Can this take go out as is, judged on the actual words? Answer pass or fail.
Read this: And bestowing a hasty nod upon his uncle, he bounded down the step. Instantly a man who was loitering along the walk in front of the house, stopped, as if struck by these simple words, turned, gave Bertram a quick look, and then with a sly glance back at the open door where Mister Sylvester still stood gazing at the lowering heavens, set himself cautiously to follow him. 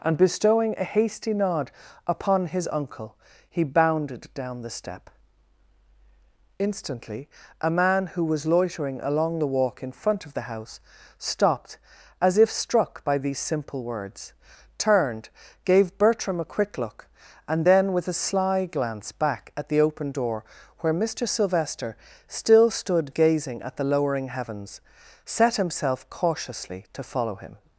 pass